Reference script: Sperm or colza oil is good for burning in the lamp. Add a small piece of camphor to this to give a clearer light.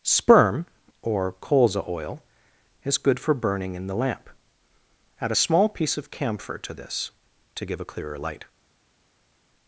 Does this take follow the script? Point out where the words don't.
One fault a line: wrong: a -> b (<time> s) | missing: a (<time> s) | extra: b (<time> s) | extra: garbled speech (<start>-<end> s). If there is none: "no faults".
no faults